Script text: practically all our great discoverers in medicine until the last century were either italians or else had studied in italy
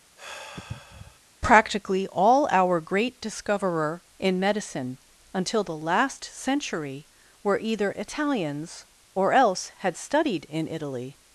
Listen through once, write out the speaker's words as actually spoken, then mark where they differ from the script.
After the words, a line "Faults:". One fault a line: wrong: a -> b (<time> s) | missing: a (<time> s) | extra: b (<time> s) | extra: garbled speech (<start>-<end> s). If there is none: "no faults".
practically all our great discoverer in medicine until the last century were either italians or else had studied in italy
Faults:
wrong: discoverers -> discoverer (3.2 s)